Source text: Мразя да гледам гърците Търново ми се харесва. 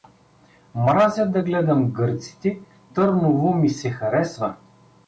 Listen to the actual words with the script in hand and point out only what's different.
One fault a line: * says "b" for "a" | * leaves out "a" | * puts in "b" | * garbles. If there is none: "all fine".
all fine